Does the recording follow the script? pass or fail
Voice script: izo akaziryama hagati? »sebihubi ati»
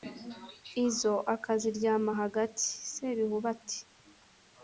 pass